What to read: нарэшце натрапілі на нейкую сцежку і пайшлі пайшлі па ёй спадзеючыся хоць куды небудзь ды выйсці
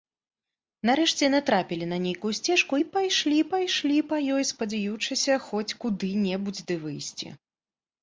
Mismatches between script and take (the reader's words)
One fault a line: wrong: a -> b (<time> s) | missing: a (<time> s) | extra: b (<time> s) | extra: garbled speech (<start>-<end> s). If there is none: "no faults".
no faults